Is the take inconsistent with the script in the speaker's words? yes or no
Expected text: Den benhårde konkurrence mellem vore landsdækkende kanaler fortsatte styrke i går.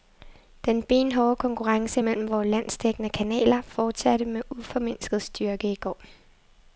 yes